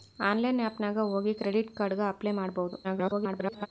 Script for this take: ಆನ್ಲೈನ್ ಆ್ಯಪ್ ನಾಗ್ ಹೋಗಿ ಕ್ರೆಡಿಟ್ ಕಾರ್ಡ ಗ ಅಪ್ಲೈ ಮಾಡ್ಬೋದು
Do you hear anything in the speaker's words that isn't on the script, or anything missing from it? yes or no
yes